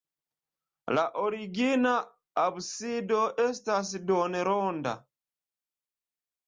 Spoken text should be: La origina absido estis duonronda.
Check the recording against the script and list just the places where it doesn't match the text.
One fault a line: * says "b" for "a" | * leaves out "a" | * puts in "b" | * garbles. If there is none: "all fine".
* says "estas" for "estis"